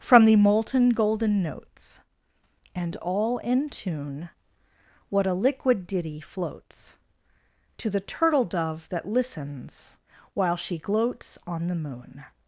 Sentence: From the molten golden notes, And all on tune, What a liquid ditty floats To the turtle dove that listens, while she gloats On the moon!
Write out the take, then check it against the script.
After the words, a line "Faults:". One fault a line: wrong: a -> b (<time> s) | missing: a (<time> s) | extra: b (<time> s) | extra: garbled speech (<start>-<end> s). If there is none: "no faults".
From the molten golden notes, And all in tune, What a liquid ditty floats To the turtle dove that listens, while she gloats On the moon!
Faults:
wrong: on -> in (3.4 s)